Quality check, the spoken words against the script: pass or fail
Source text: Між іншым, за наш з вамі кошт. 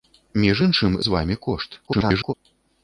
fail